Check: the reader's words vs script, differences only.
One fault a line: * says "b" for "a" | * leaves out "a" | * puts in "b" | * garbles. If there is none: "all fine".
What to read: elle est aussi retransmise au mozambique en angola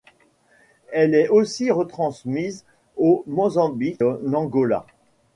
all fine